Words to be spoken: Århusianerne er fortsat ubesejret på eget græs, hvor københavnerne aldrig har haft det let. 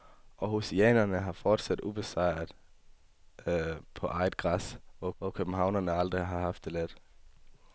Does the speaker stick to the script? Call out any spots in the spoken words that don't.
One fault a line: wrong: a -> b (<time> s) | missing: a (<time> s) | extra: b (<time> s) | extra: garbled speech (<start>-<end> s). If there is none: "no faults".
extra: hvor (5.2 s)